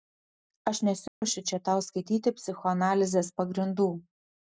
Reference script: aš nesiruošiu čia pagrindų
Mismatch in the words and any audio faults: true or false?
true